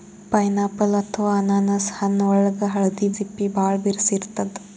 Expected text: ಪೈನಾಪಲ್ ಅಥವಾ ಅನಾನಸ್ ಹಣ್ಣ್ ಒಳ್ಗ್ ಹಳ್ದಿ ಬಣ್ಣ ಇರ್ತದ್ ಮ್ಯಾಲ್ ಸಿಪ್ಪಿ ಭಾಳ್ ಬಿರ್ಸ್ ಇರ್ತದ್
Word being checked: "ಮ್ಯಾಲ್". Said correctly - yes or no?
no